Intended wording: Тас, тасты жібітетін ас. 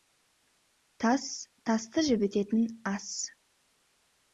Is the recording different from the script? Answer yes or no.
no